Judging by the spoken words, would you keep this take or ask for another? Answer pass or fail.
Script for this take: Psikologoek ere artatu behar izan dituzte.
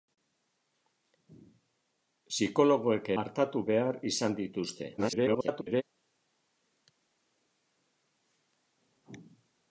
fail